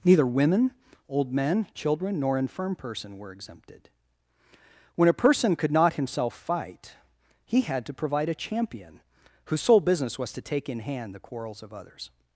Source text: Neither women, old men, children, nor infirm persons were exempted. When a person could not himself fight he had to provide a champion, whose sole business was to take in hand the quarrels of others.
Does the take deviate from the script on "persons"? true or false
true